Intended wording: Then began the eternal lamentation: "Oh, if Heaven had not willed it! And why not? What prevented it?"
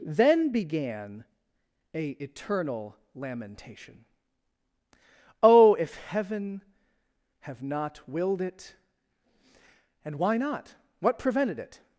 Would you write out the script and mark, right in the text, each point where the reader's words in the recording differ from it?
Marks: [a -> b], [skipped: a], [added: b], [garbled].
Then began [the -> a] eternal lamentation: "Oh, if Heaven [had -> have] not willed it! And why not? What prevented it?"